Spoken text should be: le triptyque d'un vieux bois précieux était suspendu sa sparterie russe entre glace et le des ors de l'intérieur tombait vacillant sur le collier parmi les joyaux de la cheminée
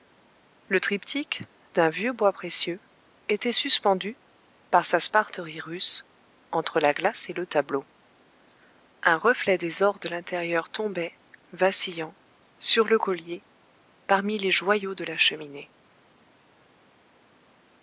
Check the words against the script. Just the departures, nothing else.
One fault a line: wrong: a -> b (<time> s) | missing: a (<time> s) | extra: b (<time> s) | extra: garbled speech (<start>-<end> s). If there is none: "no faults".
extra: par (4.7 s)
extra: la (6.8 s)
extra: tableau un reflet (7.5 s)